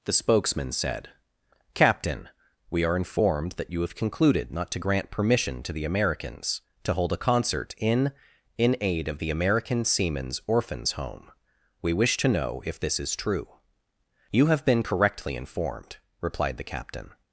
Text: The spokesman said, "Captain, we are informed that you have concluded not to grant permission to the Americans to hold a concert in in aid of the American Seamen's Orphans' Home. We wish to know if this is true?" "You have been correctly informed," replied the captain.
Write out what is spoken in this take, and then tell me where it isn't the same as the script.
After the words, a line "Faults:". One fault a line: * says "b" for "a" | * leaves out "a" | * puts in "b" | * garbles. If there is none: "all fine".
The spokesman said, "Captain, we are informed that you have concluded not to grant permission to the Americans to hold a concert in in aid of the American Seamen's Orphans' Home. We wish to know if this is true?" "You have been correctly informed," replied the captain.
Faults:
all fine